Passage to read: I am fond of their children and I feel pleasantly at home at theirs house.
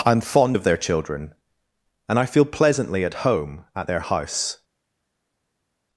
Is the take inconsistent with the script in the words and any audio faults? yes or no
yes